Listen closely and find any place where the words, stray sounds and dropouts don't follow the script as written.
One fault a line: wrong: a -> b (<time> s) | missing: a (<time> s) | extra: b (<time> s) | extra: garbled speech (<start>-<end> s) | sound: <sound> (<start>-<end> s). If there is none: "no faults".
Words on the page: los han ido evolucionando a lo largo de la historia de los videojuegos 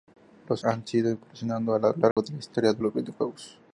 sound: dropout (2.1-2.2 s)